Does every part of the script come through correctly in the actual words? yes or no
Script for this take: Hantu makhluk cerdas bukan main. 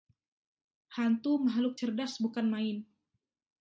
yes